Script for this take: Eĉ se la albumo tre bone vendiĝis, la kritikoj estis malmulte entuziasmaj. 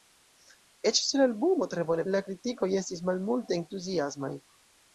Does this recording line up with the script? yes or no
no